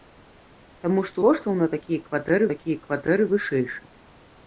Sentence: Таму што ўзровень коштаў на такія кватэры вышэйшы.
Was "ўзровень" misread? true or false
true